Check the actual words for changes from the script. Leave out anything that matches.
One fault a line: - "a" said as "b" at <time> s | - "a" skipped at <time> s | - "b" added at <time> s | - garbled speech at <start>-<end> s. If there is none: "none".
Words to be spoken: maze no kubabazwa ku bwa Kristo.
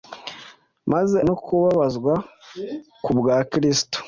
none